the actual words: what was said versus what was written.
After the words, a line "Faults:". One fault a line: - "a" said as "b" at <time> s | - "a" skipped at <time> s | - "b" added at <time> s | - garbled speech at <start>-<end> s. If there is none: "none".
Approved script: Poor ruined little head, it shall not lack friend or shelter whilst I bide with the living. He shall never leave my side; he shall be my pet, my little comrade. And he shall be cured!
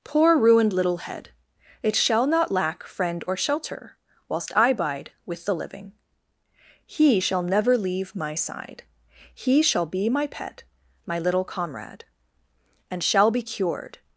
Poor ruined little head, it shall not lack friend or shelter whilst I bide with the living. He shall never leave my side; he shall be my pet, my little comrade. And shall be cured!
Faults:
- "he" skipped at 13.0 s